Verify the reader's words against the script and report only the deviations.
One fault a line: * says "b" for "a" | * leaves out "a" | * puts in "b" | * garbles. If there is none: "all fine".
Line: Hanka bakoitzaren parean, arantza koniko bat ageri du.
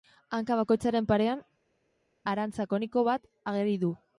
all fine